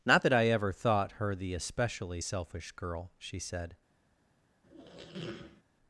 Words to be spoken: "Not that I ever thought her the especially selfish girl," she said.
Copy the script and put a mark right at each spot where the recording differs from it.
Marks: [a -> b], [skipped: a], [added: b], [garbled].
"Not that I ever thought her the especially selfish girl," she said.